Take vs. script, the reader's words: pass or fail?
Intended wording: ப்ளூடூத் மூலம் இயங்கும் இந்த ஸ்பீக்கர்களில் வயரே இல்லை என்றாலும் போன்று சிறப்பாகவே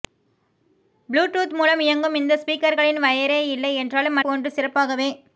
pass